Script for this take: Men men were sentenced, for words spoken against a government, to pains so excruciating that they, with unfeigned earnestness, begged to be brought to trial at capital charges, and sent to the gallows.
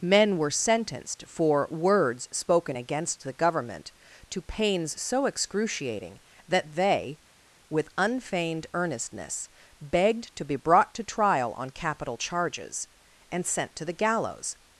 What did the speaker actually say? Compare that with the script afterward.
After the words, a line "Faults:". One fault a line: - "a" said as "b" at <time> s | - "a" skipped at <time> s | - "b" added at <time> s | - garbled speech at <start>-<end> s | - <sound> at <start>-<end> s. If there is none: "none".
Men were sentenced, for words spoken against the government, to pains so excruciating that they, with unfeigned earnestness, begged to be brought to trial on capital charges, and sent to the gallows.
Faults:
- "men" skipped at 0.4 s
- "a" said as "the" at 3.2 s
- "at" said as "on" at 11.5 s